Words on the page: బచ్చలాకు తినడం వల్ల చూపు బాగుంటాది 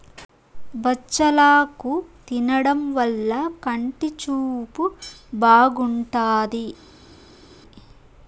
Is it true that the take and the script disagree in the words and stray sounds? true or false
true